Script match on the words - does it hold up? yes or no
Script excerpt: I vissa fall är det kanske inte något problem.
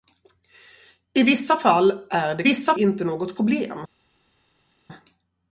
no